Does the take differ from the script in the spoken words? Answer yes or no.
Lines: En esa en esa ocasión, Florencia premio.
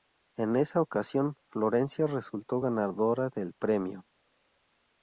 yes